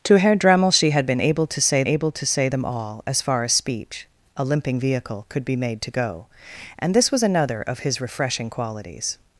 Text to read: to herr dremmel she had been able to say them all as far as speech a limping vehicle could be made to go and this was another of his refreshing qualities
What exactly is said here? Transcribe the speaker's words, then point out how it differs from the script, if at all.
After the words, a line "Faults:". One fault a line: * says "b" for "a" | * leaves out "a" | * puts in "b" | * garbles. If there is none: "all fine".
to herr dremmel she had been able to say able to say them all as far as speech a limping vehicle could be made to go and this was another of his refreshing qualities
Faults:
* puts in "able to say"